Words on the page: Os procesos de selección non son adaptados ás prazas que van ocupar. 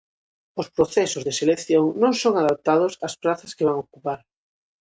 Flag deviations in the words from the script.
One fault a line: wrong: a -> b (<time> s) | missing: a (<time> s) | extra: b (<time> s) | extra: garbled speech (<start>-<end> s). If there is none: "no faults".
no faults